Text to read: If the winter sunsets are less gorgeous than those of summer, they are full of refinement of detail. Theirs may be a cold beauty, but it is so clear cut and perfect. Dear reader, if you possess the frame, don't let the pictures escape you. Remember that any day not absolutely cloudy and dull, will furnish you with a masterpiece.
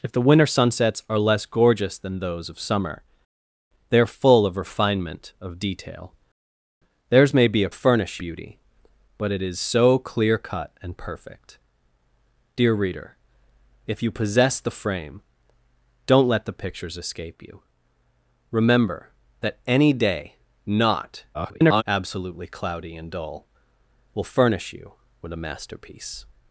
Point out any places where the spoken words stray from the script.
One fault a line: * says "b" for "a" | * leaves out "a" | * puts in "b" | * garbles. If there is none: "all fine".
* says "furnish" for "cold"
* garbles